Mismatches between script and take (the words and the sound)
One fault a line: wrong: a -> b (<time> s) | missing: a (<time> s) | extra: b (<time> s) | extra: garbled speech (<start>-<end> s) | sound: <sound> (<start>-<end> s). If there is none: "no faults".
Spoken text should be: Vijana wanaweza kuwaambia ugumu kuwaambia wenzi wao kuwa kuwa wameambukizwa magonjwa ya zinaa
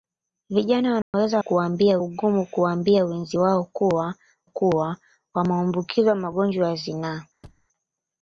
sound: dropout (1.0-1.1 s)
sound: thud (7.4-7.7 s)